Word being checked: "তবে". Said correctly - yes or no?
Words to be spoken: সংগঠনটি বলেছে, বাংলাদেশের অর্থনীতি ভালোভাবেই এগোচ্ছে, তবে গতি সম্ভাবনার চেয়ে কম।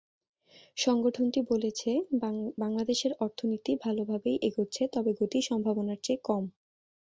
yes